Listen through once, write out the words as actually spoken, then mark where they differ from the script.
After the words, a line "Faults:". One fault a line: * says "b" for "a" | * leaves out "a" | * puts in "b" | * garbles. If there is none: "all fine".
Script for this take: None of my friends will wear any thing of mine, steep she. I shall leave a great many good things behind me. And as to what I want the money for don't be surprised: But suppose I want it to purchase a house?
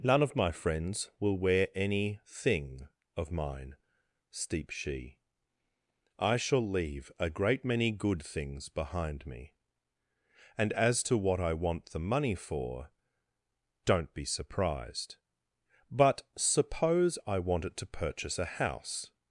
None of my friends will wear any thing of mine, steep she. I shall leave a great many good things behind me. And as to what I want the money for don't be surprised: But suppose I want it to purchase a house?
Faults:
all fine